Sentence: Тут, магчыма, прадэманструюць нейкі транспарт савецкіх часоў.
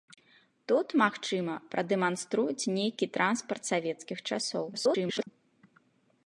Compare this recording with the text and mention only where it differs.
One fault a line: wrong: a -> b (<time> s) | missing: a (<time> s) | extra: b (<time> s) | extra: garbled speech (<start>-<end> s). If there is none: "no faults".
extra: garbled speech (4.7-5.3 s)